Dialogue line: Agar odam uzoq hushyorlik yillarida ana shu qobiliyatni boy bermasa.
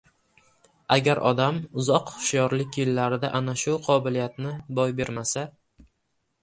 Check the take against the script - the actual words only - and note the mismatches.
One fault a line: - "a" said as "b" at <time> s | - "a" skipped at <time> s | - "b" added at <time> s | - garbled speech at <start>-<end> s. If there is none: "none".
none